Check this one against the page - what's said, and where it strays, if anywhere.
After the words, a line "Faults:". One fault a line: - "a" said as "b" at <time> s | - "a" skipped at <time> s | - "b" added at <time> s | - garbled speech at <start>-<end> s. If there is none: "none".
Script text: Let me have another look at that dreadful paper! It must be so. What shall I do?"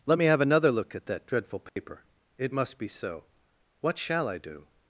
Let me have another look at that dreadful paper! It must be so. What shall I do?"
Faults:
none